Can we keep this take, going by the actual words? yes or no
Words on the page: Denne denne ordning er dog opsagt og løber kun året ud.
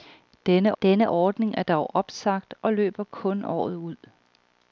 yes